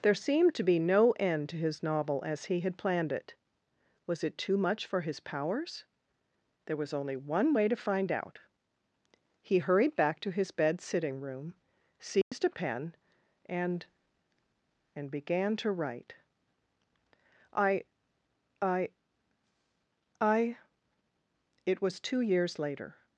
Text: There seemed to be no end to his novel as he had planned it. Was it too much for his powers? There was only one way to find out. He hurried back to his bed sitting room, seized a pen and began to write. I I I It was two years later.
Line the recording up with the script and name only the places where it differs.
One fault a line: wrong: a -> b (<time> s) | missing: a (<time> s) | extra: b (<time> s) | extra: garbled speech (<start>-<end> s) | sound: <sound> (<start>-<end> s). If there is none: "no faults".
sound: dropout (12.2-12.3 s)
extra: and (14.9 s)